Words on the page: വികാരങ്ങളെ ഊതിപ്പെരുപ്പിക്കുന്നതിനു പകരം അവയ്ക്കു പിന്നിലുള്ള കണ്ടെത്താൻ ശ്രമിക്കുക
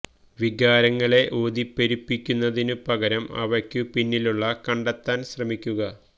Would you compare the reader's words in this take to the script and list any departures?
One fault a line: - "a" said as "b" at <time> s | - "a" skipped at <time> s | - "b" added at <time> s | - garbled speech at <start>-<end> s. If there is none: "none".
none